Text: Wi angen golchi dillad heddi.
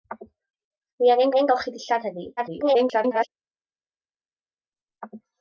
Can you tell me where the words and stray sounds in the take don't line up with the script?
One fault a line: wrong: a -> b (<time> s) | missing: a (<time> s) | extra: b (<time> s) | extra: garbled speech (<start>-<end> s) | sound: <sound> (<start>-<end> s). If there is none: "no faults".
extra: angen (1.3 s)
extra: garbled speech (2.4-3.3 s)